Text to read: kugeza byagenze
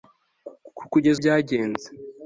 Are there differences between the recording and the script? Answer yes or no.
no